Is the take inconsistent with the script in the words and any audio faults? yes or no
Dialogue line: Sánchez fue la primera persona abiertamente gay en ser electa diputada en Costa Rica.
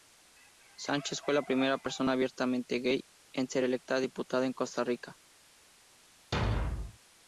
yes